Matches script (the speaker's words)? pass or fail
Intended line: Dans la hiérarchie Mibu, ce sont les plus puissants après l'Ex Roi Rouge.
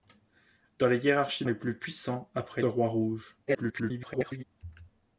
fail